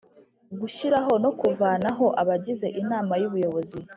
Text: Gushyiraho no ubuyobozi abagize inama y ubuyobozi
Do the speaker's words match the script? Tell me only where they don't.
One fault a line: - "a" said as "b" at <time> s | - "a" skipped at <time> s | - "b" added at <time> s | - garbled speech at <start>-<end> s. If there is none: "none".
- "ubuyobozi" said as "kuvanaho" at 1.4 s